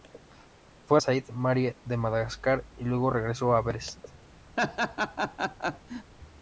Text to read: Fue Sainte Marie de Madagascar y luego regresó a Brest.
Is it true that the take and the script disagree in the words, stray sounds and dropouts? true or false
true